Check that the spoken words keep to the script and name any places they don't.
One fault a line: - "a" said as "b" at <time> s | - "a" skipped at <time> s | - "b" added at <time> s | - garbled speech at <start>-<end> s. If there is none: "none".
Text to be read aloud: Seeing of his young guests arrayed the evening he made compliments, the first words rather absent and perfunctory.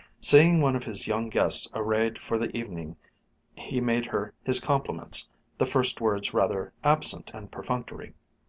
- "one" added at 0.6 s
- "for" added at 2.2 s
- "her his" added at 4.1 s